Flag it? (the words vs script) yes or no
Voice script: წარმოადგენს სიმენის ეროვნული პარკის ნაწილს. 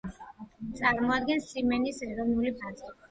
yes